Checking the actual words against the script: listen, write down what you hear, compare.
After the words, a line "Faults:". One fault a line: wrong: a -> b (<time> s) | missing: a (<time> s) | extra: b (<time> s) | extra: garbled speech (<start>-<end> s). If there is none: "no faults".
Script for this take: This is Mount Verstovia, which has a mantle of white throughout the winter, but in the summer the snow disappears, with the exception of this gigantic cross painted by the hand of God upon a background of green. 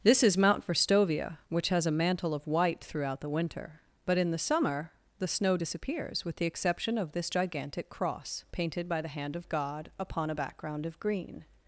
This is Mount Verstovia, which has a mantle of white throughout the winter, but in the summer the snow disappears, with the exception of this gigantic cross painted by the hand of God upon a background of green.
Faults:
no faults